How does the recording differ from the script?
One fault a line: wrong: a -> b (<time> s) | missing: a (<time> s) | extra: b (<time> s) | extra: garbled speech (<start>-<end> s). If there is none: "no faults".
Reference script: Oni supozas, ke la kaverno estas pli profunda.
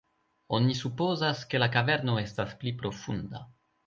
no faults